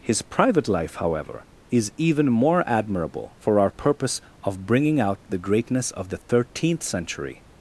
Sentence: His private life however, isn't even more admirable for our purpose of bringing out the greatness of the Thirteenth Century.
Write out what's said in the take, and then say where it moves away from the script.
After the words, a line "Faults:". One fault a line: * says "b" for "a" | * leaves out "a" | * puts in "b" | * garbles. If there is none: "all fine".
His private life however, is even more admirable for our purpose of bringing out the greatness of the Thirteenth Century.
Faults:
* says "is" for "isn't"